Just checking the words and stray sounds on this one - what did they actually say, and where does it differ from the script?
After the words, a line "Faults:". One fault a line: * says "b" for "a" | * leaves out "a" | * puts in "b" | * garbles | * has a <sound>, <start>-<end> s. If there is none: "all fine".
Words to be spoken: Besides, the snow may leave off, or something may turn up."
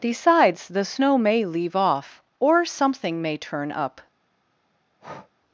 Besides, the snow may leave off, or something may turn up."
Faults:
* has a breath, 5.0-5.3 s